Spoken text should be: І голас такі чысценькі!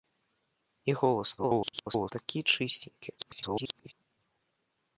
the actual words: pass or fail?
fail